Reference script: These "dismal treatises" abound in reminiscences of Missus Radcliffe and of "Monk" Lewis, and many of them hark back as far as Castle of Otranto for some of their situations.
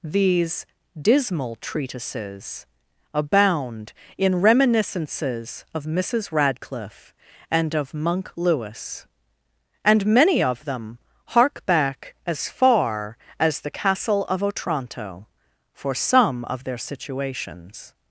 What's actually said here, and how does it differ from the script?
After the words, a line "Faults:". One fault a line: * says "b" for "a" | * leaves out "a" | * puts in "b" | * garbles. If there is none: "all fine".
These "dismal treatises" abound in reminiscences of Missus Radcliffe and of "Monk" Lewis, and many of them hark back as far as The Castle of Otranto for some of their situations.
Faults:
* puts in "The"